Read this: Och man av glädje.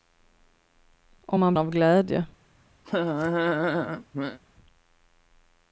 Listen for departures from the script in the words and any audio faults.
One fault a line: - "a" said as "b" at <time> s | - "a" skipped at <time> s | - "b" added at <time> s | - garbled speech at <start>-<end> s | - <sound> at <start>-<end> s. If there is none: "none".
- laugh at 2.8-4.4 s